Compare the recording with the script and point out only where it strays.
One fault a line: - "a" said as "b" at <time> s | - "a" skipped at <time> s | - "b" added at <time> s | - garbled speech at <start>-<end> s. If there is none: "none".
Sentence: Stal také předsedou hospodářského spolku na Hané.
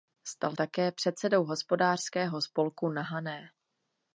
none